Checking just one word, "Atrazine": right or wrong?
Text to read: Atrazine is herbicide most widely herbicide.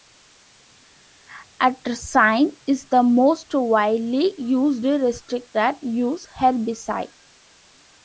right